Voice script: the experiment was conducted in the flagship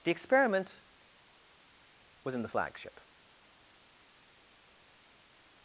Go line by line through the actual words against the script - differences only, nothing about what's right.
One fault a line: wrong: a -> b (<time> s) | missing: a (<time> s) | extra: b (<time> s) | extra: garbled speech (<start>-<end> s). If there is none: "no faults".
missing: conducted (2.3 s)